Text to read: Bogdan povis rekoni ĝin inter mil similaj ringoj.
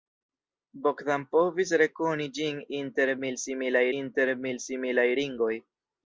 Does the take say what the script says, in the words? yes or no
no